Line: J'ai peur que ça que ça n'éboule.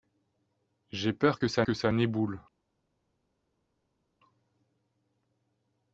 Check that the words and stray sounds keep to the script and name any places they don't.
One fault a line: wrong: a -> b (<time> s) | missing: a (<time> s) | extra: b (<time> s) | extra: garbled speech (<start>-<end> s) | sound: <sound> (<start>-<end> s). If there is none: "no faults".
no faults